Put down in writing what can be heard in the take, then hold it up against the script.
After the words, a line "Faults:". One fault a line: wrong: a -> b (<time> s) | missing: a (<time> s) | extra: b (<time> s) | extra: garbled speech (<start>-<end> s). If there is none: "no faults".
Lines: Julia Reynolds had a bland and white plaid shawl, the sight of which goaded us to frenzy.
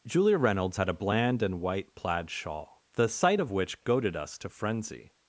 Julia Reynolds had a bland and white plaid shawl, the sight of which goaded us to frenzy.
Faults:
no faults